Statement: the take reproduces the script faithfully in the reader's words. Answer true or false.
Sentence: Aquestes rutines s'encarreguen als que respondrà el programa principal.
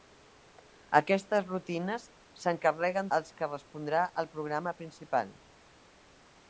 true